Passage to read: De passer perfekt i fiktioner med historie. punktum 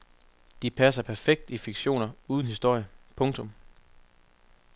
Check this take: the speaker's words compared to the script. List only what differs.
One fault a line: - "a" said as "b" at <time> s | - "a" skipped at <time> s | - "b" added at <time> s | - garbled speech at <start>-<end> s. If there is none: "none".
- "med" said as "uden" at 2.3 s